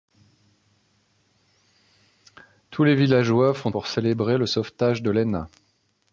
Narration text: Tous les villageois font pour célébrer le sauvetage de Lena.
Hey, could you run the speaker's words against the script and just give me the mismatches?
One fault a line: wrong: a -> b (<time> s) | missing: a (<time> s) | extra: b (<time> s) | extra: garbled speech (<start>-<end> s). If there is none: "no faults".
no faults